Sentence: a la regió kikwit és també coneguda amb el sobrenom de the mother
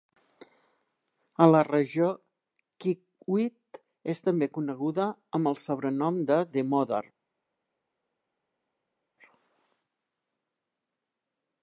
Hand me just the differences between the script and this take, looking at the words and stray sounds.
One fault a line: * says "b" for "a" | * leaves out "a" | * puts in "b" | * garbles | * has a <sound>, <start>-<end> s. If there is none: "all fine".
all fine